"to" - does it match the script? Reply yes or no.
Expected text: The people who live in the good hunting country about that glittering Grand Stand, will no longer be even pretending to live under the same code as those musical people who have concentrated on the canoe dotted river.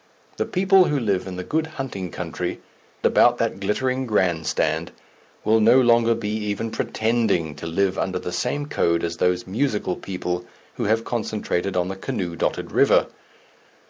yes